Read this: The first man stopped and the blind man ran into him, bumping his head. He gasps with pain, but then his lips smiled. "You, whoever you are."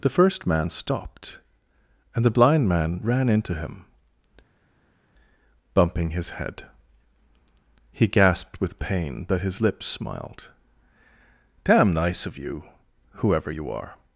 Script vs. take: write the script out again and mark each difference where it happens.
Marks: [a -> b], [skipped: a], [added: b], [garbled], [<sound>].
The first man stopped and the blind man ran into him, bumping his head. He [gasps -> gasped] with pain, but [skipped: then] his lips smiled. [added: Damn nice of] "You, whoever you are."